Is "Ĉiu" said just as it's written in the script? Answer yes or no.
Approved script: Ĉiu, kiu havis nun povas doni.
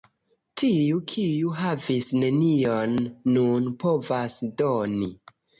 no